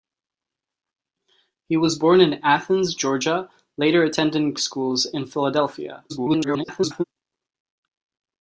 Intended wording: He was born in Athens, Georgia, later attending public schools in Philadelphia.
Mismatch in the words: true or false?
true